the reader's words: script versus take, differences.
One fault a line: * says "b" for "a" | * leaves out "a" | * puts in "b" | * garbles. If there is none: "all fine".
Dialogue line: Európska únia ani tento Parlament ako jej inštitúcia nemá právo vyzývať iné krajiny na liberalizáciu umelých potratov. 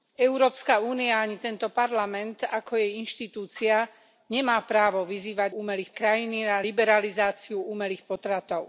* says "umelých" for "iné"